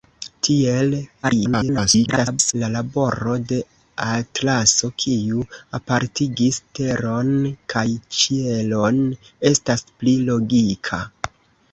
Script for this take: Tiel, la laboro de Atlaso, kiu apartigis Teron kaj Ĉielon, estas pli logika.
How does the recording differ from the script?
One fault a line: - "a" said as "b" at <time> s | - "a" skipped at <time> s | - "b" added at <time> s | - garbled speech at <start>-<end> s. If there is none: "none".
- garbled speech at 1.2-2.5 s